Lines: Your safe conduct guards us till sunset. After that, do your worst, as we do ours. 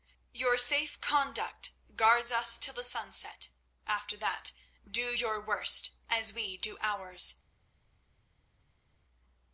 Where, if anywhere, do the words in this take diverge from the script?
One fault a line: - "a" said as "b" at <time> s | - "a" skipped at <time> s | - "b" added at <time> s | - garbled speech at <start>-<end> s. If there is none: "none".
- "the" added at 2.7 s